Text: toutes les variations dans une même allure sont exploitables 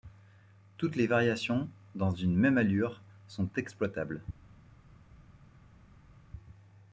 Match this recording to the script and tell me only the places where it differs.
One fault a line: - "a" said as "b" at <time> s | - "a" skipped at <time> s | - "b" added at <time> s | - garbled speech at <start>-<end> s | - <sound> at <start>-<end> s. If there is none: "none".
none